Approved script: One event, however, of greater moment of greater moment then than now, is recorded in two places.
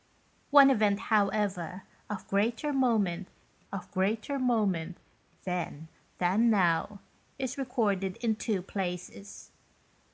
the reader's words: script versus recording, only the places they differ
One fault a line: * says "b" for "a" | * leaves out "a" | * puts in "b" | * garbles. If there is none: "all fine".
all fine